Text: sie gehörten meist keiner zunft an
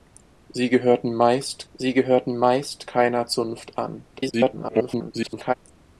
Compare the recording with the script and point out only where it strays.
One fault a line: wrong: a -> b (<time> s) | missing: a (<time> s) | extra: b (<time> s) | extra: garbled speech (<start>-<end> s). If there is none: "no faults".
extra: sie gehörten meist (1.7 s)
extra: garbled speech (4.1-5.5 s)